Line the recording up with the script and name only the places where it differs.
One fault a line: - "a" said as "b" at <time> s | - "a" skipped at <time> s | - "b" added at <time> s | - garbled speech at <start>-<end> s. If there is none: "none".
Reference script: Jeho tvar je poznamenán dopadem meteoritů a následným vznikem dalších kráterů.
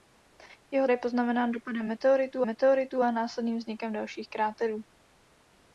- "tvar" skipped at 0.9 s
- "meteoritů" added at 2.5 s